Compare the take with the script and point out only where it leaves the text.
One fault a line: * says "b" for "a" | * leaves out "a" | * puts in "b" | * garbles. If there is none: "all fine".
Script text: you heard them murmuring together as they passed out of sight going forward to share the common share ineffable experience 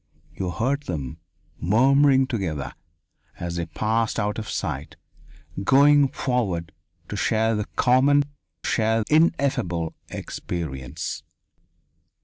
all fine